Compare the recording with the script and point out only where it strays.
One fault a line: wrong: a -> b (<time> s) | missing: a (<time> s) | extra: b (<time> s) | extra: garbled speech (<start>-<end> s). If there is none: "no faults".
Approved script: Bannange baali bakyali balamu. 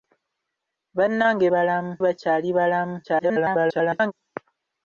wrong: baali -> balamu (1.5 s)
extra: garbled speech (3.0-4.1 s)